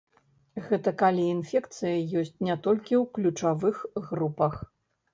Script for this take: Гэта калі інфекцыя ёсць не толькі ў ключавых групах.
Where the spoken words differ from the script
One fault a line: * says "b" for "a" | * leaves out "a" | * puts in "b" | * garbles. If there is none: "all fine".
all fine